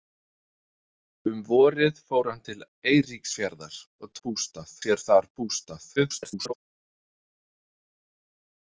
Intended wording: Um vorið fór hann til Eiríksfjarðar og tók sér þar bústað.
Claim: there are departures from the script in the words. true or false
true